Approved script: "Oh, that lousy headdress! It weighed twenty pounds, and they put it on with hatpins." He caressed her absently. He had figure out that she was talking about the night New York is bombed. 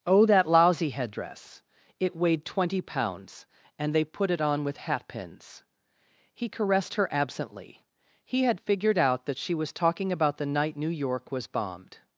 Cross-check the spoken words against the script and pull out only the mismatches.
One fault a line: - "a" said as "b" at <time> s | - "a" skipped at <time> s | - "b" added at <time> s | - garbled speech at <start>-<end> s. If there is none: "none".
- "figure" said as "figured" at 8.6 s
- "is" said as "was" at 11.3 s